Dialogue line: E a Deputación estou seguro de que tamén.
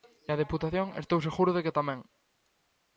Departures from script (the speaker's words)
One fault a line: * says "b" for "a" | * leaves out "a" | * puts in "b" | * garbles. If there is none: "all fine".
all fine